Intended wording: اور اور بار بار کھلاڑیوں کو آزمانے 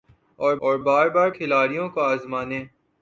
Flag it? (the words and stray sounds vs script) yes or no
no